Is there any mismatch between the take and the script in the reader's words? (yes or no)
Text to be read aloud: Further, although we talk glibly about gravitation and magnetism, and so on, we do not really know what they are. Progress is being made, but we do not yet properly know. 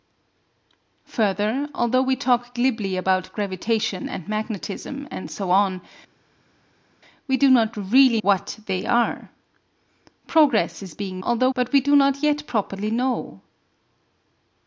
yes